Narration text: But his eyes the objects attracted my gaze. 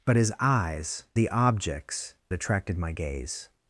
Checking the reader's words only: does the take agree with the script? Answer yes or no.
yes